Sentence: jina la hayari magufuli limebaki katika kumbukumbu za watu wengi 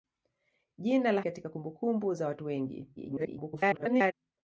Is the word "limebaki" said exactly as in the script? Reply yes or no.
no